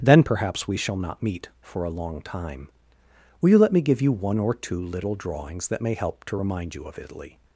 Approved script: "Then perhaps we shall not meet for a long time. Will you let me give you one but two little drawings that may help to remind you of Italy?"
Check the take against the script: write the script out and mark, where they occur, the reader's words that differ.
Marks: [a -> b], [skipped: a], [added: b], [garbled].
"Then perhaps we shall not meet for a long time. Will you let me give you one [but -> or] two little drawings that may help to remind you of Italy?"